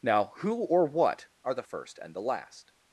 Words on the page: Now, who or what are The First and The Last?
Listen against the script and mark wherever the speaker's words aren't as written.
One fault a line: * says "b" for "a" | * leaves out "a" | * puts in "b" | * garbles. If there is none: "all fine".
all fine